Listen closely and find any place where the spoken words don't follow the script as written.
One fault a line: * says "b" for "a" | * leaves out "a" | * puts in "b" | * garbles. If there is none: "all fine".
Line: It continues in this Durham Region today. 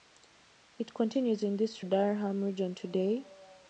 all fine